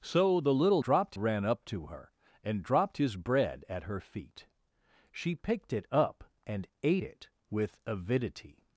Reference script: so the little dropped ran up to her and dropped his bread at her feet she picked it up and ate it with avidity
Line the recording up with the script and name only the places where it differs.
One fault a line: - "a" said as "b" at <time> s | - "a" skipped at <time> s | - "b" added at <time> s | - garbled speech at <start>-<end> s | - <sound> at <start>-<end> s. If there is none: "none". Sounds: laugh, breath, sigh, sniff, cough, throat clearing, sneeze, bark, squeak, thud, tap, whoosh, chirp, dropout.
none